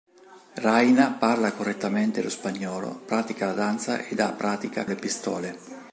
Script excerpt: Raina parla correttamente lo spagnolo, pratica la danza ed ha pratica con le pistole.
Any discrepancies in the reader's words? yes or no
yes